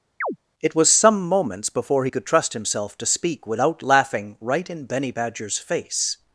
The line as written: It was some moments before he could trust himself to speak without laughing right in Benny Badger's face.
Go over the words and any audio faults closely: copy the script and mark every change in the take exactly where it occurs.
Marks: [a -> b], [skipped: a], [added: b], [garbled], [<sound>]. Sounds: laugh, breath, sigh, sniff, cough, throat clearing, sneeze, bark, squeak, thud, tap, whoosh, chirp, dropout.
[chirp] It was some moments before he could trust himself to speak without laughing right in Benny Badger's face.